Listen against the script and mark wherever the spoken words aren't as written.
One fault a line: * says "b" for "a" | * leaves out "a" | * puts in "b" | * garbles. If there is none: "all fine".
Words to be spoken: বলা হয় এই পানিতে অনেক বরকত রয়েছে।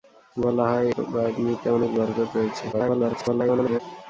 * leaves out "এই"
* garbles